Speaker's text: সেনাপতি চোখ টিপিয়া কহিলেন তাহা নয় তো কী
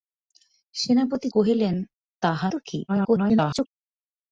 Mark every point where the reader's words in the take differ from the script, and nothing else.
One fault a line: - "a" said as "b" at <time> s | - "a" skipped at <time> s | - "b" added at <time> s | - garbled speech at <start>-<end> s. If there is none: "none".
- "চোখ টিপিয়া" skipped at 1.3 s
- "নয়" skipped at 2.5 s
- garbled speech at 2.9-3.7 s